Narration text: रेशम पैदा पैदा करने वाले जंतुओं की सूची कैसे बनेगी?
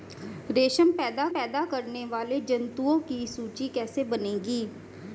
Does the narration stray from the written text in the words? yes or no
no